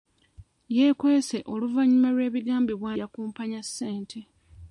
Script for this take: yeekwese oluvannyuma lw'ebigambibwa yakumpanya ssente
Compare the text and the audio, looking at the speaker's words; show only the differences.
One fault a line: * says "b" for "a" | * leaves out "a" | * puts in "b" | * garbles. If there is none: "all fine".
all fine